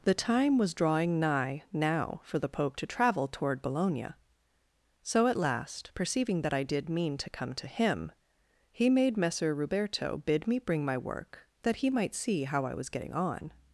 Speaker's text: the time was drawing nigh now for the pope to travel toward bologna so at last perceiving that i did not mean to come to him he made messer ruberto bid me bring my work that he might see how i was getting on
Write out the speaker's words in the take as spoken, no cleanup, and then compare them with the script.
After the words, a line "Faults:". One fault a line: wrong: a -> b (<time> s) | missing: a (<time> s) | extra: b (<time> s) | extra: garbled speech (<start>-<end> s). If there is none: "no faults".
the time was drawing nigh now for the pope to travel toward bologna so at last perceiving that i did mean to come to him he made messer ruberto bid me bring my work that he might see how i was getting on
Faults:
missing: not (6.9 s)